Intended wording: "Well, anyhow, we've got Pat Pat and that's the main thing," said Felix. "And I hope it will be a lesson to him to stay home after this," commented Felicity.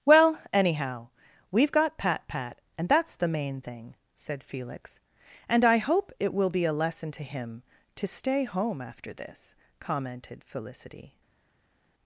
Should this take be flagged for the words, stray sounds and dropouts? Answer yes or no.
no